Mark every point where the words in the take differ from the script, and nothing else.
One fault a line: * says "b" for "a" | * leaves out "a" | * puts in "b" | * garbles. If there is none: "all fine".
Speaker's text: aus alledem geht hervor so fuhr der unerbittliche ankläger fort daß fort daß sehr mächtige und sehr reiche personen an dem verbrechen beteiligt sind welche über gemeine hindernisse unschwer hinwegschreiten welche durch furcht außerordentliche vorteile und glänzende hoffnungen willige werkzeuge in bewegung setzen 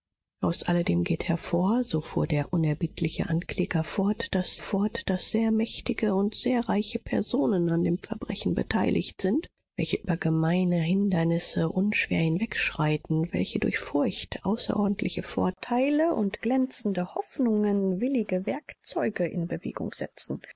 all fine